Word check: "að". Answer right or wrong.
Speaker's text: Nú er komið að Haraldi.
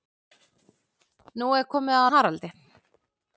right